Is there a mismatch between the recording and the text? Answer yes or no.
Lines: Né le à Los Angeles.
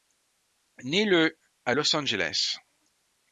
no